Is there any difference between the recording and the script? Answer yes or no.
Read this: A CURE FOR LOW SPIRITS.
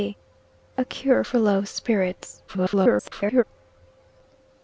yes